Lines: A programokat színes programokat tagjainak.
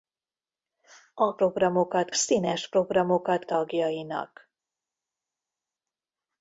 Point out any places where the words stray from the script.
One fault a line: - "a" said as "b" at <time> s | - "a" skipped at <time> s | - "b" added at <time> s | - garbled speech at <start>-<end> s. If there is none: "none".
none